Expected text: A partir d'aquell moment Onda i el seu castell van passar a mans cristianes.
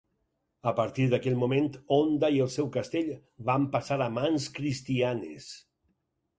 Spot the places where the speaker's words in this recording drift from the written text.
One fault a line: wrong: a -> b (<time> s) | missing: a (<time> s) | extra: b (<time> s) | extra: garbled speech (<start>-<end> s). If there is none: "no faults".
no faults